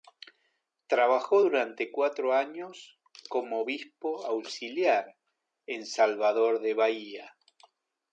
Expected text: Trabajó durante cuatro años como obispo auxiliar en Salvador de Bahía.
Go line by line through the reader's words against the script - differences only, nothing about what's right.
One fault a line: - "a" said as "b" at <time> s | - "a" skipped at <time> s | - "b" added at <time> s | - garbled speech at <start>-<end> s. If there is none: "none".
none